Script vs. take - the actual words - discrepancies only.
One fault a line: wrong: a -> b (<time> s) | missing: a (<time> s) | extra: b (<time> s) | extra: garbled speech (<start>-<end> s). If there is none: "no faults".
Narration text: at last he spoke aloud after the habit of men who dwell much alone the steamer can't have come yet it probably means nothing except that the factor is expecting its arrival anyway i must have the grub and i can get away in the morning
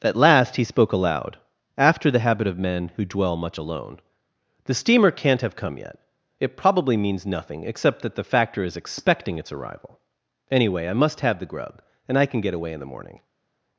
no faults